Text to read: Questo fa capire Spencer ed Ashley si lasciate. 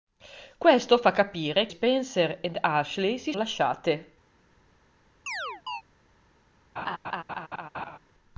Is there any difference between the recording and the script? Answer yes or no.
no